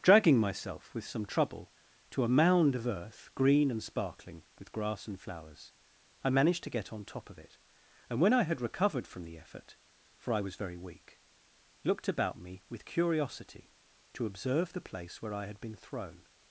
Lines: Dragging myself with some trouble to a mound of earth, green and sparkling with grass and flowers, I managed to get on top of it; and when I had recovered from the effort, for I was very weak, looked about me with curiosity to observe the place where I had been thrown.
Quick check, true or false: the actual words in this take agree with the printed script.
true